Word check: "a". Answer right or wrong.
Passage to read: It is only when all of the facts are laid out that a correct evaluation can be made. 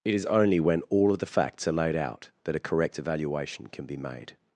right